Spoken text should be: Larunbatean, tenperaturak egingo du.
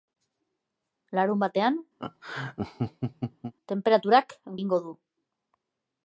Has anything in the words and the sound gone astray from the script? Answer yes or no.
yes